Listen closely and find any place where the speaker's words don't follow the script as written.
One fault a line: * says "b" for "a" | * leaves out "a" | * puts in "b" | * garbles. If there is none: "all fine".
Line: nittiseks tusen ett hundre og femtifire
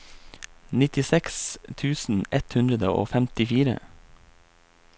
all fine